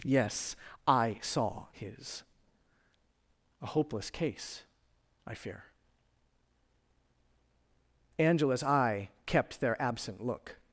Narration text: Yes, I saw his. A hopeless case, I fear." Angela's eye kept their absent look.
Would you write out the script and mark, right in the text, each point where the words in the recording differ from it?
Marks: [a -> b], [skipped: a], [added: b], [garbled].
Yes, I saw his. A hopeless case, I fear." Angela's eye kept their absent look.